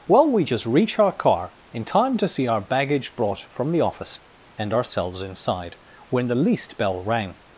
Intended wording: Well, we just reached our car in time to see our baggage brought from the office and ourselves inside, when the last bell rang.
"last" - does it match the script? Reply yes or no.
no